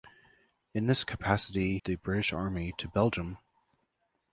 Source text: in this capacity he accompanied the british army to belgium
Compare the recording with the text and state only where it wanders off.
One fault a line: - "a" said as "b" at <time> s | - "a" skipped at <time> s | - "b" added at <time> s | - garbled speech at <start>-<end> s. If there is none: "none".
- "he accompanied" skipped at 1.8 s